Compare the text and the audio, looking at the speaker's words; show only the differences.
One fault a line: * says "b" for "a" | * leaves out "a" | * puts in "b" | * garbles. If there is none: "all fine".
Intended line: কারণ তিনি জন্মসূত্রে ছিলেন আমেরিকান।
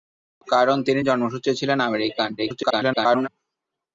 * garbles